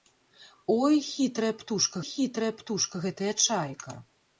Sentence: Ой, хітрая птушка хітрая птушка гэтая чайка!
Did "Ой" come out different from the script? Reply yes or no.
no